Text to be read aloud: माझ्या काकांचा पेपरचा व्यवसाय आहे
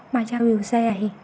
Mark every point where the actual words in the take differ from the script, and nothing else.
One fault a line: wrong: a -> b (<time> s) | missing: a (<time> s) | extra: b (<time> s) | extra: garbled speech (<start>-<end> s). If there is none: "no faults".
missing: काकांचा पेपरचा (0.4 s)